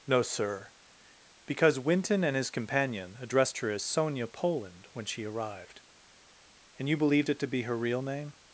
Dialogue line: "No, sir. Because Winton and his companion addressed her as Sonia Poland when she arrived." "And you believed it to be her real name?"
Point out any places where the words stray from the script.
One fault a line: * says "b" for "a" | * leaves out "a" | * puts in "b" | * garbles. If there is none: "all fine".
all fine